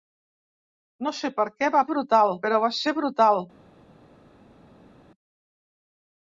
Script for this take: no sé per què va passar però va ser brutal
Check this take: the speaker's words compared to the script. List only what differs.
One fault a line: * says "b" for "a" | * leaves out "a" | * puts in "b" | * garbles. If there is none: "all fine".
* says "brutal" for "passar"